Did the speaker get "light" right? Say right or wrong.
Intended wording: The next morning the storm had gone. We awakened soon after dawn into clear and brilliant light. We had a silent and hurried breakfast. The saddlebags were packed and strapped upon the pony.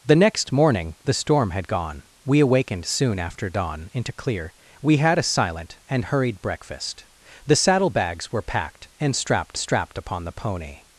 wrong